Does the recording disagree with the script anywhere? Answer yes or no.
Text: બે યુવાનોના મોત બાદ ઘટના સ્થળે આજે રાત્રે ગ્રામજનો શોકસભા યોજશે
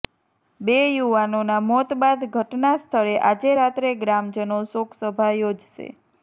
no